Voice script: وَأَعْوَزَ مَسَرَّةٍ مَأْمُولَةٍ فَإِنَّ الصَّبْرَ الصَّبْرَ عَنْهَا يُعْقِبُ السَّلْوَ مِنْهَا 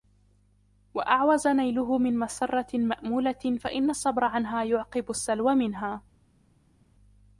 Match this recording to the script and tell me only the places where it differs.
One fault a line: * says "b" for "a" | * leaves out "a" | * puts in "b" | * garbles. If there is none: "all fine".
* puts in "نَيْلُهُ مِنْ"
* leaves out "الصَّبْرَ"